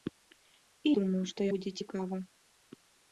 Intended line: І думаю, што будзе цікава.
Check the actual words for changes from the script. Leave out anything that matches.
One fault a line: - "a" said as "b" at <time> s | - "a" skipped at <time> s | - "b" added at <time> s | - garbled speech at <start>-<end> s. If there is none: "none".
none